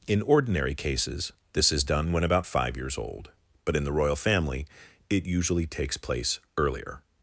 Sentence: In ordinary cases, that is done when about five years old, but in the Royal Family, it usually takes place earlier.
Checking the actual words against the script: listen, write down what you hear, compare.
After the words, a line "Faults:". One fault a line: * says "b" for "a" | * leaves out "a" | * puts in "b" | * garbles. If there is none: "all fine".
In ordinary cases, this is done when about five years old, but in the Royal Family, it usually takes place earlier.
Faults:
* says "this" for "that"